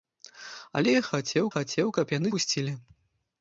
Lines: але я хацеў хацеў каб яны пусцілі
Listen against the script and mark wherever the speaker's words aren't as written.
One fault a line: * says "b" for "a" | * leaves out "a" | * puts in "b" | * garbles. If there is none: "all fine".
all fine